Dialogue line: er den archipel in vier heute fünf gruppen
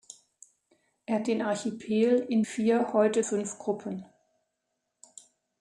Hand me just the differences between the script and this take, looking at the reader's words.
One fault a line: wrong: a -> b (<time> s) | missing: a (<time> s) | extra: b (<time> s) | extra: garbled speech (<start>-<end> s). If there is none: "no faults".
no faults